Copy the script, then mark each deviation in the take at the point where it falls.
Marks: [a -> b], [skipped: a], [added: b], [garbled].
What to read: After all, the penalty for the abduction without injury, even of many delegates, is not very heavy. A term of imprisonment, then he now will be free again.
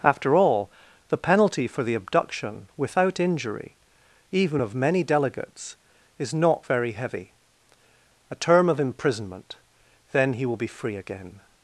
After all, the penalty for the abduction without injury, even of many delegates, is not very heavy. A term of imprisonment, then he [skipped: now] will be free again.